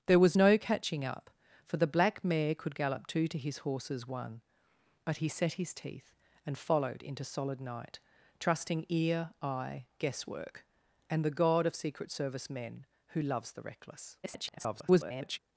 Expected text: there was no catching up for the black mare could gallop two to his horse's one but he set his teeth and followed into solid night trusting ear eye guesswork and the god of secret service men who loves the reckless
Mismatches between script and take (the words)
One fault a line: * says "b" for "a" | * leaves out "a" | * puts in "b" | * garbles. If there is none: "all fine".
* garbles